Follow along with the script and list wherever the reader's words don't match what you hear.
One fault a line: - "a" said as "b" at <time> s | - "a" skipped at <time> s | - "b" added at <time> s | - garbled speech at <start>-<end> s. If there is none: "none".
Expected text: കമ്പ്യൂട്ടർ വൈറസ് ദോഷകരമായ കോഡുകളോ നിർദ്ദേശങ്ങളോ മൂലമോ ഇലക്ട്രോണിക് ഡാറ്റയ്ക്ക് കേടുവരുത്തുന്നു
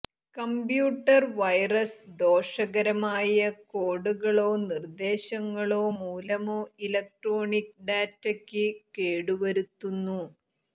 none